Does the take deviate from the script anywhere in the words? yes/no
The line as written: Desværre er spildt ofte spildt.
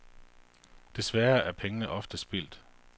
yes